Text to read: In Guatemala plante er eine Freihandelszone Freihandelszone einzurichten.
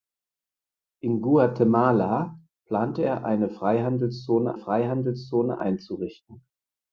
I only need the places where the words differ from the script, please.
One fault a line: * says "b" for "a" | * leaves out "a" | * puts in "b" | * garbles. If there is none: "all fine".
all fine